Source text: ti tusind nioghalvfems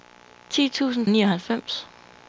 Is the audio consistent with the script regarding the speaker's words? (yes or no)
yes